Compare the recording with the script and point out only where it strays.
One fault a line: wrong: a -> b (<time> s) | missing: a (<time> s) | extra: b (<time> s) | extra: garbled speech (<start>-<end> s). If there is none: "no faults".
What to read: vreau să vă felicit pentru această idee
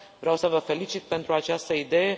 no faults